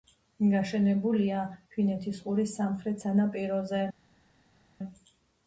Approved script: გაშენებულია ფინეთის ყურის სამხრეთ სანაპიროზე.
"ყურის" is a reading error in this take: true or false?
false